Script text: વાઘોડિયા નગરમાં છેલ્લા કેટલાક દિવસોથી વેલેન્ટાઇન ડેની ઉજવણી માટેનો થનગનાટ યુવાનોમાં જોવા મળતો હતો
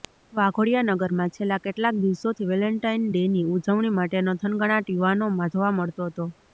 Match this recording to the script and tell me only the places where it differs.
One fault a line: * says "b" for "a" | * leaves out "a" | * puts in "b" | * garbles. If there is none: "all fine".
all fine